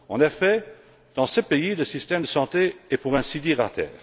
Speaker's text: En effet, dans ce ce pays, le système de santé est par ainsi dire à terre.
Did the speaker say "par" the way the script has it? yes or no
no